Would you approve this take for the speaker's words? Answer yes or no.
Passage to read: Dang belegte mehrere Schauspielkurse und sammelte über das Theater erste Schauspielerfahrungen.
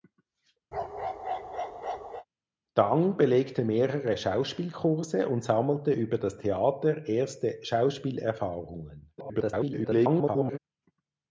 no